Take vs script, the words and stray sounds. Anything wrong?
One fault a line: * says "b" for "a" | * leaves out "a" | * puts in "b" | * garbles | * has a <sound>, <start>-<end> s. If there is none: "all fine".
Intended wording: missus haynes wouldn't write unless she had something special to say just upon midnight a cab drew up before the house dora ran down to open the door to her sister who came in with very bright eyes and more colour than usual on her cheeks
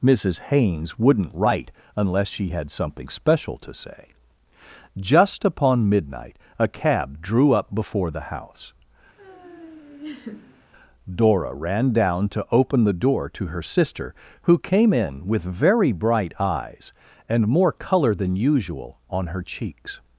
* has a laugh, 9.2-10.6 s